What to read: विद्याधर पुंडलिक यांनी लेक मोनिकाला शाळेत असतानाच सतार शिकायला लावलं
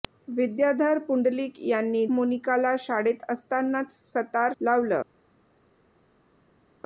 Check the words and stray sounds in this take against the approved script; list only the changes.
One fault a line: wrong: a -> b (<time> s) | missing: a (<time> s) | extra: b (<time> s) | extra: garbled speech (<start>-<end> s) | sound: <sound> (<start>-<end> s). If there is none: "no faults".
missing: लेक (2.0 s)
missing: शिकायला (4.5 s)